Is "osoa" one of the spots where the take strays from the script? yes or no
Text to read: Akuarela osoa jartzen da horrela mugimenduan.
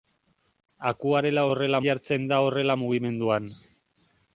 yes